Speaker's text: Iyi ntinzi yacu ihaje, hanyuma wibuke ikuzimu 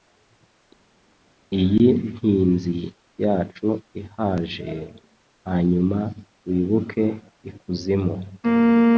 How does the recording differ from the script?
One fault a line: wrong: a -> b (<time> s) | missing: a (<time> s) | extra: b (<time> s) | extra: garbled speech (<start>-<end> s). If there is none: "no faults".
no faults